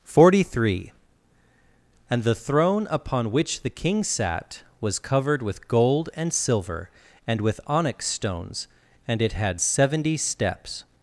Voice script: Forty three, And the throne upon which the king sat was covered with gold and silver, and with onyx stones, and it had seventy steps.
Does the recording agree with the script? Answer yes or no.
yes